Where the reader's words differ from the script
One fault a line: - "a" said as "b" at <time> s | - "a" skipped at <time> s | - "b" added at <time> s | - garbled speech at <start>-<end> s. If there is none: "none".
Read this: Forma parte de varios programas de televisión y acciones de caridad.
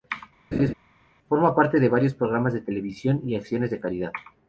none